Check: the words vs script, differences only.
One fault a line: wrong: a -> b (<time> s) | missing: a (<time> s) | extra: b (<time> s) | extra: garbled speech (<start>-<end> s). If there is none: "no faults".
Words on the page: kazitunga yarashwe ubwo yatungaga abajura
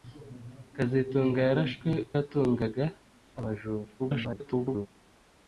missing: ubwo (1.9 s)
extra: garbled speech (4.0-4.9 s)